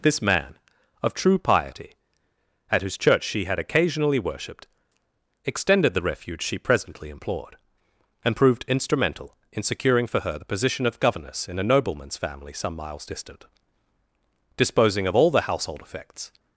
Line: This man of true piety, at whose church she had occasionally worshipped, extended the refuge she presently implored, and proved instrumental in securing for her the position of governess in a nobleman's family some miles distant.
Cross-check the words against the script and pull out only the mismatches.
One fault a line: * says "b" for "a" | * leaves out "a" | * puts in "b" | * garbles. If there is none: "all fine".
* puts in "Disposing of all the household effects"